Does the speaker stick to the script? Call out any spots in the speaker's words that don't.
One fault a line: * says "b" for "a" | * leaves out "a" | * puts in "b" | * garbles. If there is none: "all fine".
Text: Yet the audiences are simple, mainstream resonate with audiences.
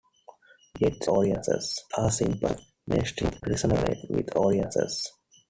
all fine